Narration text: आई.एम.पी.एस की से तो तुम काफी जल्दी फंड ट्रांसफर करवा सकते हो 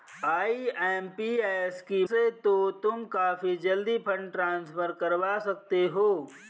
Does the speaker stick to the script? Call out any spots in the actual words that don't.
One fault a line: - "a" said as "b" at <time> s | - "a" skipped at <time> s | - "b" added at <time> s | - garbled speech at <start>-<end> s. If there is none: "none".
none